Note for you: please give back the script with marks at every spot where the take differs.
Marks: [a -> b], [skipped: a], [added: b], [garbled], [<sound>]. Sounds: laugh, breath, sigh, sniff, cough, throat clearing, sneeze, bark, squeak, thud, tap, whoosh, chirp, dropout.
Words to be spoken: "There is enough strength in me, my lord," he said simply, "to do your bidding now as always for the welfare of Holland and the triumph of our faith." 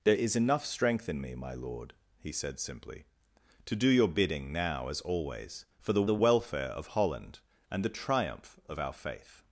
"There is enough strength in me, my lord," he said simply, "to do your bidding now as always for the [added: the] welfare of Holland and the triumph of our faith."